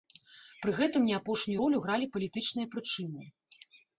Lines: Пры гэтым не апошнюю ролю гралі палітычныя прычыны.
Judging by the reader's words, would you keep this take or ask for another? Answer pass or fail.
pass